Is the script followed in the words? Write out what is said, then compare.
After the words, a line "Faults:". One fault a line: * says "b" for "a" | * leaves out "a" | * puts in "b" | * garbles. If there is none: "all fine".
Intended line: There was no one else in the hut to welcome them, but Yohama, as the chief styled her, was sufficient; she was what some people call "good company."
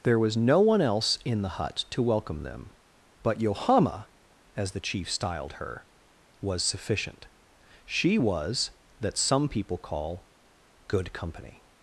There was no one else in the hut to welcome them, but Yohama, as the chief styled her, was sufficient; she was that some people call "good company."
Faults:
* says "that" for "what"